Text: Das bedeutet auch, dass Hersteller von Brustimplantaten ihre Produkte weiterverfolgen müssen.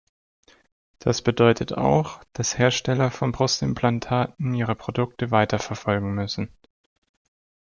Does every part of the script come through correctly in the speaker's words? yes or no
yes